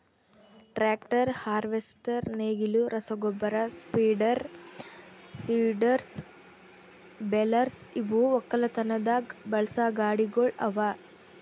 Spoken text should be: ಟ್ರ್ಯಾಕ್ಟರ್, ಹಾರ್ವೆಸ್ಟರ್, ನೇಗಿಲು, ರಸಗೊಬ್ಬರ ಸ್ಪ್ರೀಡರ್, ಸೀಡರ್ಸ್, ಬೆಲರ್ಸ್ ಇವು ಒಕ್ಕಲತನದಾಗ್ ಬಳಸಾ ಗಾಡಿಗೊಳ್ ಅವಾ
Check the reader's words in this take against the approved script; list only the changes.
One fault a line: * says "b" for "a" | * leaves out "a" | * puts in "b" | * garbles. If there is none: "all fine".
all fine